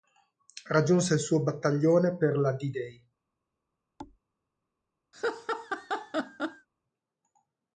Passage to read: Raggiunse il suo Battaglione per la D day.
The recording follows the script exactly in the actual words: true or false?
true